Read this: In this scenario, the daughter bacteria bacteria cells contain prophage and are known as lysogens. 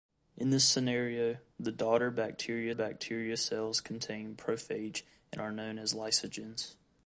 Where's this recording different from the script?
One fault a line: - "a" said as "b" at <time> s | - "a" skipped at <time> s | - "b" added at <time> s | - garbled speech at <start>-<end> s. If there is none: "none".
none